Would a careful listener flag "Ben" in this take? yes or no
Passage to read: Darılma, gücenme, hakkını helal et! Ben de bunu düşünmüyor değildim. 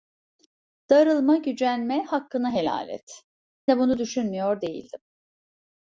yes